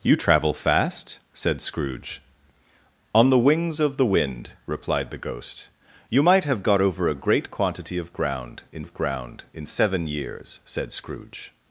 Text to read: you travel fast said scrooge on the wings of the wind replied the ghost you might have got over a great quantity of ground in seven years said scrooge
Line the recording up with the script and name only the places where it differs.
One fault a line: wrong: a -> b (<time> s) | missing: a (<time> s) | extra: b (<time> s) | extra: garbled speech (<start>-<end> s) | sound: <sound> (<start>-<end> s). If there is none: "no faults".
extra: of ground in (8.8 s)